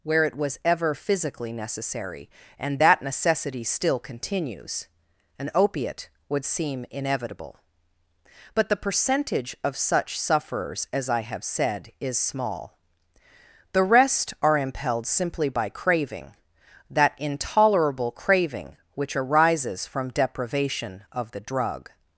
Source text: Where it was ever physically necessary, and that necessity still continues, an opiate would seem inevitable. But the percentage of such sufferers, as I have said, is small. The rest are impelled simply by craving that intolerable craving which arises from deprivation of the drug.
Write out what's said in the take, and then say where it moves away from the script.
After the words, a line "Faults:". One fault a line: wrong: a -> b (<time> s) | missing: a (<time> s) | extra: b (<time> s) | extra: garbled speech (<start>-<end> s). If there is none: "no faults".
Where it was ever physically necessary, and that necessity still continues, an opiate would seem inevitable. But the percentage of such sufferers, as I have said, is small. The rest are impelled simply by craving that intolerable craving which arises from deprivation of the drug.
Faults:
no faults